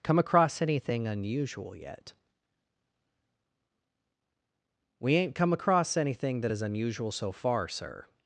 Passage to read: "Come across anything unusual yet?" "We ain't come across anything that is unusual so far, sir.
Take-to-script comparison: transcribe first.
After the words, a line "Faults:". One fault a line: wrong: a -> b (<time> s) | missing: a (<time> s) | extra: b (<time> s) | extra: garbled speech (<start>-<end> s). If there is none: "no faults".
"Come across anything unusual yet?" "We ain't come across anything that is unusual so far, sir.
Faults:
no faults